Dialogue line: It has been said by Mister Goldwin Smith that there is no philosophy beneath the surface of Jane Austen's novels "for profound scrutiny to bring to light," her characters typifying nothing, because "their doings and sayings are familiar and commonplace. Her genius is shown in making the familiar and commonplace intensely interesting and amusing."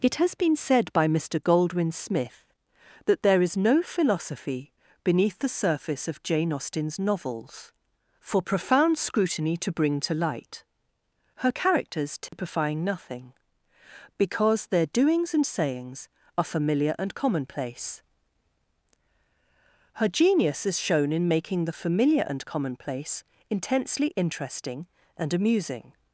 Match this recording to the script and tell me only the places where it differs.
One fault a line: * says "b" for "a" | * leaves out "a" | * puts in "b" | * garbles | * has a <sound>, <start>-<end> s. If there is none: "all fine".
* has a dropout, 12.3-12.3 s